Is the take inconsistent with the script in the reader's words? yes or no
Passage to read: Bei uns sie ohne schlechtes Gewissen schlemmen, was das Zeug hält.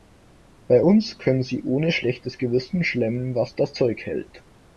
yes